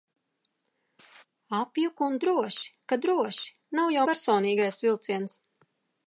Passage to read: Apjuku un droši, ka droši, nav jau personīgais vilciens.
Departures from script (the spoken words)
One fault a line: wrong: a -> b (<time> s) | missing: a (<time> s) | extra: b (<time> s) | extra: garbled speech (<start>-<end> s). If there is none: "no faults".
no faults